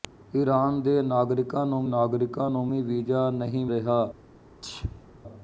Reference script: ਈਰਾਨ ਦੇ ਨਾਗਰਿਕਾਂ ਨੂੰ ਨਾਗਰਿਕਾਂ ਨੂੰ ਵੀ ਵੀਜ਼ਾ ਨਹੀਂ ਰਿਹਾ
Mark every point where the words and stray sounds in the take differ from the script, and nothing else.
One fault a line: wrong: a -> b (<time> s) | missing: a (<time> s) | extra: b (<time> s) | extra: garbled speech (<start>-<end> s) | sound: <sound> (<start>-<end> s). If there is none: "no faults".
sound: sneeze (4.6-5.1 s)